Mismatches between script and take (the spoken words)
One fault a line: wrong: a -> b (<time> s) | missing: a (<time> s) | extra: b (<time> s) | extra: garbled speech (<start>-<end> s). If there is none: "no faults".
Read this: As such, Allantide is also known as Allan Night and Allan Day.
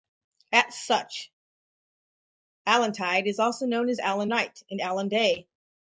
no faults